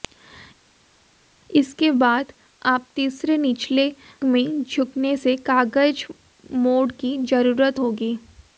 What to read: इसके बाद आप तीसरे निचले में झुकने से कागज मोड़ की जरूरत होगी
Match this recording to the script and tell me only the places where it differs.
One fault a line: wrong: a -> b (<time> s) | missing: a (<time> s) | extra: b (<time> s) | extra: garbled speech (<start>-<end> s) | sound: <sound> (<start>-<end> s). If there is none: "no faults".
no faults